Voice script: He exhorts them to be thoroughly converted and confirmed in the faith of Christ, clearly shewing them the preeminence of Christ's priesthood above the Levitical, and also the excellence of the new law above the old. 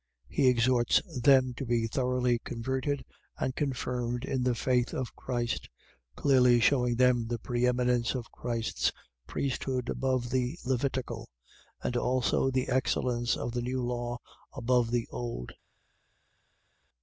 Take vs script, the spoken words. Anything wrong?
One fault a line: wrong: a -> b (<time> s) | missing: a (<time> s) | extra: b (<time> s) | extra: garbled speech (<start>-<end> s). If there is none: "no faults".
no faults